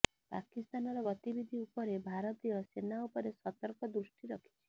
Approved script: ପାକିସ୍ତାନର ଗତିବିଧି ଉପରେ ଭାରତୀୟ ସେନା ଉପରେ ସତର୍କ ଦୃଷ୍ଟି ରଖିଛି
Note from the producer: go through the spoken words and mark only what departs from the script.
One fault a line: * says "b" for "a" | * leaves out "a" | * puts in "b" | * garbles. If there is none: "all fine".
all fine